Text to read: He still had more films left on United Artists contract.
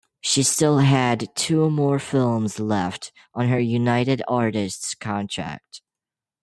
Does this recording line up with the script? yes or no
no